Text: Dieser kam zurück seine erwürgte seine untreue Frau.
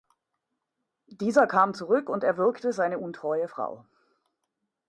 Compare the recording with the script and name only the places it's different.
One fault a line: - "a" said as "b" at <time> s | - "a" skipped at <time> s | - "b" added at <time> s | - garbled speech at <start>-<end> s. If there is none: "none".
- "seine" said as "und" at 2.1 s